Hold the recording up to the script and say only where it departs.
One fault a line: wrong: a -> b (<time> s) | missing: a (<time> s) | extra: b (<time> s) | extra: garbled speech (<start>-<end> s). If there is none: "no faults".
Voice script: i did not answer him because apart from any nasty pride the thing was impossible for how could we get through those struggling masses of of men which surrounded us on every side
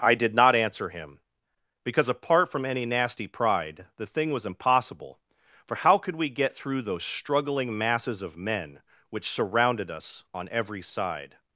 missing: of (8.3 s)